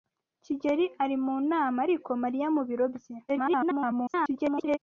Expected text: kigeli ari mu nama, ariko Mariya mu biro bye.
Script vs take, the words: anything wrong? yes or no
yes